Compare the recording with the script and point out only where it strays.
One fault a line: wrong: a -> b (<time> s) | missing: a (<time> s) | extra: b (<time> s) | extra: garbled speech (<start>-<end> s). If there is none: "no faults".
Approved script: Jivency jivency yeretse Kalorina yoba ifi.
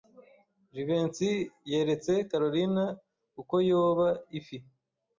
missing: jivency (1.3 s)
extra: uko (3.4 s)